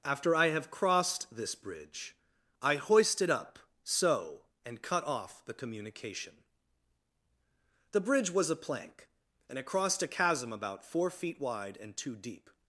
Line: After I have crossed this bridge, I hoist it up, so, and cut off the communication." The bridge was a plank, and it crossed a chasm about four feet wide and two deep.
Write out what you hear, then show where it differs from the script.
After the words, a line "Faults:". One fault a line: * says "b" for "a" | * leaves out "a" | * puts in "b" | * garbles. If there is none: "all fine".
After I have crossed this bridge, I hoist it up, so, and cut off the communication." The bridge was a plank, and it crossed a chasm about four feet wide and two deep.
Faults:
all fine